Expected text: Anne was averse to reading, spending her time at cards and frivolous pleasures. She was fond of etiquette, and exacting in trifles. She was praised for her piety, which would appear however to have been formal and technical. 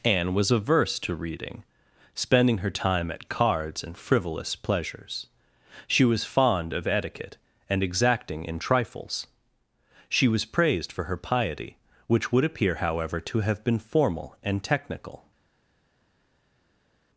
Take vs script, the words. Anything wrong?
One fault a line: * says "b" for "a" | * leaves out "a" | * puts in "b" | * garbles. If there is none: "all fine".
all fine